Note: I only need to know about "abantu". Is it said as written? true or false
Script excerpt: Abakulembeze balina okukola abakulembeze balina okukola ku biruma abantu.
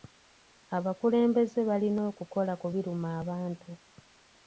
true